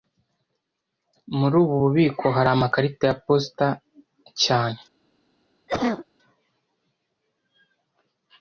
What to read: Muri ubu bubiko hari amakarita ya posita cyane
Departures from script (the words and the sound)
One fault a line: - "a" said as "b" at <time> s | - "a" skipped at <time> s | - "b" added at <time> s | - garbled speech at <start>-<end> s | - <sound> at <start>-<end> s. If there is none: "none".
- cough at 5.7-6.1 s